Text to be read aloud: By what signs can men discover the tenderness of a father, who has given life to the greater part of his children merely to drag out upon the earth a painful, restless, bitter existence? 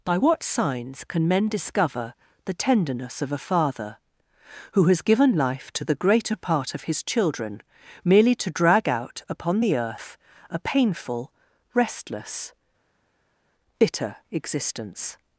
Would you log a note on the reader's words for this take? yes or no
no